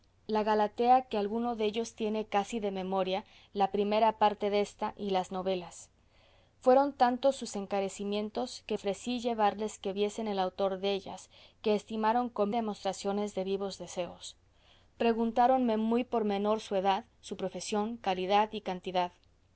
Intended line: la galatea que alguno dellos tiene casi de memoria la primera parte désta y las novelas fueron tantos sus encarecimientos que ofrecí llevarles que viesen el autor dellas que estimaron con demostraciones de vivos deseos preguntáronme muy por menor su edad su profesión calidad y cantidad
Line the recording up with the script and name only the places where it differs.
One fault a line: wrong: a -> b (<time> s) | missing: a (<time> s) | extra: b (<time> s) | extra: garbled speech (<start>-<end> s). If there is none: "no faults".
no faults